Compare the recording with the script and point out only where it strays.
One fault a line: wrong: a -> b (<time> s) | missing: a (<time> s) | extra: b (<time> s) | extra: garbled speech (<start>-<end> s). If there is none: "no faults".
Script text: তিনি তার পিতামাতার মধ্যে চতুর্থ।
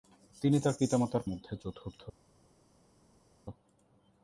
no faults